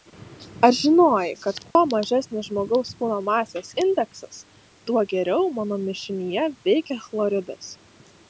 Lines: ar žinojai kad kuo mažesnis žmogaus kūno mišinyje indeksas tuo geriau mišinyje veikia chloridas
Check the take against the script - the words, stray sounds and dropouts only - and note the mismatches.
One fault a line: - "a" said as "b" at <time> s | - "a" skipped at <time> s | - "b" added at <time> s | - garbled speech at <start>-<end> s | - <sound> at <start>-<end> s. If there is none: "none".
- dropout at 1.7-1.8 s
- "mišinyje" said as "masės" at 3.3 s
- "mano" added at 5.6 s